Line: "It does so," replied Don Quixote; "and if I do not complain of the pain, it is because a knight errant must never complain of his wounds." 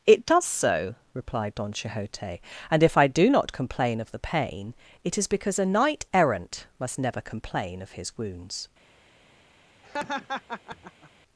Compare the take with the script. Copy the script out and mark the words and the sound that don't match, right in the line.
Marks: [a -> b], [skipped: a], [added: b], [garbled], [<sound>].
"It does so," replied Don Quixote; "and if I do not complain of the pain, it is because a knight errant must never complain of his wounds." [laugh]